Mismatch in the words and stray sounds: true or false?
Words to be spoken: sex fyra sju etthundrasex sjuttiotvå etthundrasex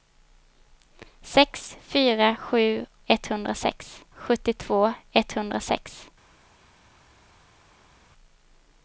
false